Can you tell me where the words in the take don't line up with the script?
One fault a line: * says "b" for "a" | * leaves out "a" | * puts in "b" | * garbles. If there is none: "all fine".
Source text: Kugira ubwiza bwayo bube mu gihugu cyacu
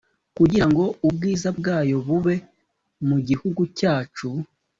* puts in "ngo"